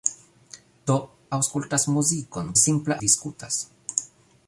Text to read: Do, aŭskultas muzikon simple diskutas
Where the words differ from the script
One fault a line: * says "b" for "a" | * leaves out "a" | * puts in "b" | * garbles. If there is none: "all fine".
all fine